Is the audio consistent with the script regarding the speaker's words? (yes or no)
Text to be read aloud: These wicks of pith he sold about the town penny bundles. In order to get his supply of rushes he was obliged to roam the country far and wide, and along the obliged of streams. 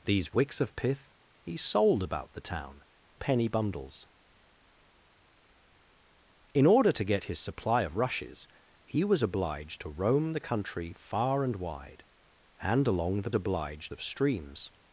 yes